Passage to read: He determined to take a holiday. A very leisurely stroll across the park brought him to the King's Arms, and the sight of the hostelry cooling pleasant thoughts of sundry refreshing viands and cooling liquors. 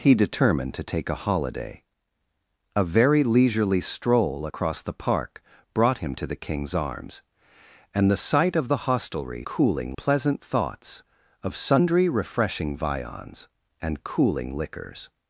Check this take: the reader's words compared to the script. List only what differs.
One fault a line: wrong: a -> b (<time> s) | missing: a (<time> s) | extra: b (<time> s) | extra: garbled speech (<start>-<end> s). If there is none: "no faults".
no faults